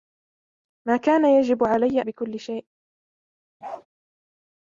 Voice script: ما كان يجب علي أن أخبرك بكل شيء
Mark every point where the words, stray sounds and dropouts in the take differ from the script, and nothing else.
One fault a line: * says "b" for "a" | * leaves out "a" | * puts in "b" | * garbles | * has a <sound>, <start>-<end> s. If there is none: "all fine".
* leaves out "أن أخبرك"
* has a bark, 3.6-3.9 s